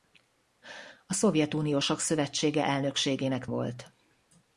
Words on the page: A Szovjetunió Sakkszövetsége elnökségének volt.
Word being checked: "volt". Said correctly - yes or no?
yes